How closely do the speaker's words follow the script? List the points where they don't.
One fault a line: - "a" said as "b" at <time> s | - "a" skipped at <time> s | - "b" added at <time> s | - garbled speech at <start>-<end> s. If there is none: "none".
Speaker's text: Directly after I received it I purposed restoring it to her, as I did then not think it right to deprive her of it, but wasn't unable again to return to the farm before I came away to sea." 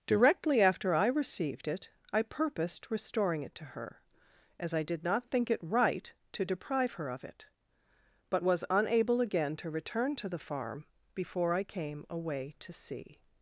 - "then" skipped at 5.0 s
- "wasn't" said as "was" at 8.4 s